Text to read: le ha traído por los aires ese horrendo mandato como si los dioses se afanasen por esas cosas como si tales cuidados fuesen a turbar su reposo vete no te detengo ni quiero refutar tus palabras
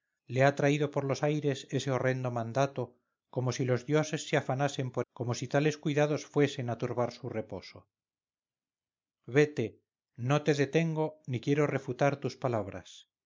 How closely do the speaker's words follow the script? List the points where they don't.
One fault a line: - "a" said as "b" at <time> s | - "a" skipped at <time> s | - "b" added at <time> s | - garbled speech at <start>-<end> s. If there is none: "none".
- "esas cosas" skipped at 5.0 s